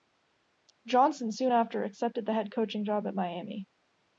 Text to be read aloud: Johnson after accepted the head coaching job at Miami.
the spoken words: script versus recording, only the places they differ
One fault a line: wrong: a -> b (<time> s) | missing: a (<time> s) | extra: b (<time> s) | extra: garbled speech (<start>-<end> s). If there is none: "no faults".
extra: soon (1.3 s)